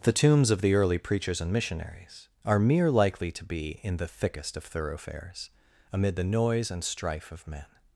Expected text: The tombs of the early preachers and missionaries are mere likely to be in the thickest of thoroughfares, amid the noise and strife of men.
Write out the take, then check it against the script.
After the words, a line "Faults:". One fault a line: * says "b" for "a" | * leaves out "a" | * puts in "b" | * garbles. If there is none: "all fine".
The tombs of the early preachers and missionaries are mere likely to be in the thickest of thoroughfares, amid the noise and strife of men.
Faults:
all fine